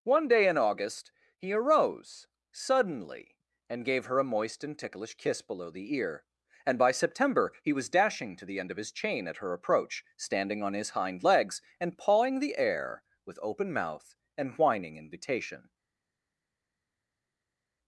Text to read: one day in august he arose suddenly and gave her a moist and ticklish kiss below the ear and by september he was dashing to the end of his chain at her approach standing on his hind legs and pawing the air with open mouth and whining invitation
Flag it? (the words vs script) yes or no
no